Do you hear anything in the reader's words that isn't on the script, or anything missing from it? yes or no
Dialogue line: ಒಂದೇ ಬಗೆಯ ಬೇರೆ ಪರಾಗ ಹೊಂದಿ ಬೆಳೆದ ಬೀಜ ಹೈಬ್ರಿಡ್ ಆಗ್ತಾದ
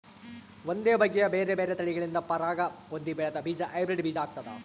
yes